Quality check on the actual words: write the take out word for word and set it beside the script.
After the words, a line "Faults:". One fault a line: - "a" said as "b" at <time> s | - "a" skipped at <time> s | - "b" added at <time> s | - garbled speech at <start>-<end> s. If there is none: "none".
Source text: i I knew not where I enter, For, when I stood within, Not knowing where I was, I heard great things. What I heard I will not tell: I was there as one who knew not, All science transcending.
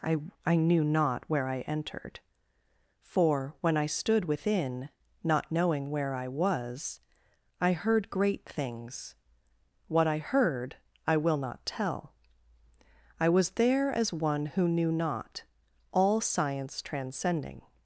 i I knew not where I entered, For, when I stood within, Not knowing where I was, I heard great things. What I heard I will not tell: I was there as one who knew not, All science transcending.
Faults:
- "enter" said as "entered" at 1.6 s